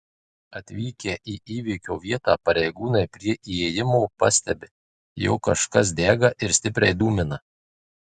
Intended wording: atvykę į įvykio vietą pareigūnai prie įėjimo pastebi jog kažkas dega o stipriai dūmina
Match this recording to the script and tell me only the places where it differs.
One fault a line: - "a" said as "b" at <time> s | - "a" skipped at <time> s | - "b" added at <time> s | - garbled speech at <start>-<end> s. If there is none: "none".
- "o" said as "ir" at 6.5 s